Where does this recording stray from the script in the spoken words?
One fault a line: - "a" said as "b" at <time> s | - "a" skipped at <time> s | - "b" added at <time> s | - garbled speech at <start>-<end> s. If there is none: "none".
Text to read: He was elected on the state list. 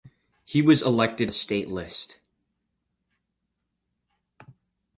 - "on" skipped at 1.3 s